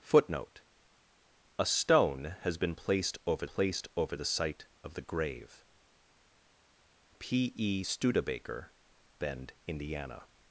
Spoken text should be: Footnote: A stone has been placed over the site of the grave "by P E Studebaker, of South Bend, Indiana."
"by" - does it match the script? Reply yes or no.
no